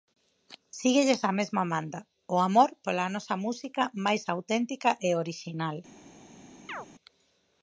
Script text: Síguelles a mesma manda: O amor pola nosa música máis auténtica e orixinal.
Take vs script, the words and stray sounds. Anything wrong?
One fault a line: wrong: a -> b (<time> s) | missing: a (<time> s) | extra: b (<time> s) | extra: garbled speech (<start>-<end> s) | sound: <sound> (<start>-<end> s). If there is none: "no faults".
sound: chirp (6.7-6.9 s)